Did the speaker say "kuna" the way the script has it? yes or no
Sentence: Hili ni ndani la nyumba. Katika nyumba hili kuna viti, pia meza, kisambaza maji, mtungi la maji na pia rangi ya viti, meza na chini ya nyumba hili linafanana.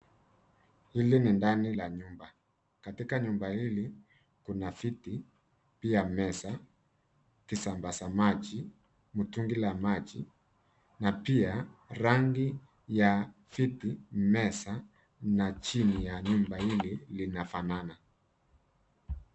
yes